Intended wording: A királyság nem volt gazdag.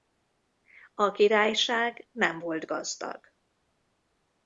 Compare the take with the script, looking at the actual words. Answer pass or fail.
pass